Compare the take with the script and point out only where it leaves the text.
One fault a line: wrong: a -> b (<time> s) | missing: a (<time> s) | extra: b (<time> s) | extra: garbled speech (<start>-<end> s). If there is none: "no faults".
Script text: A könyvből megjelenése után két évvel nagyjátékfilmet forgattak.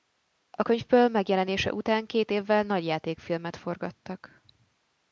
no faults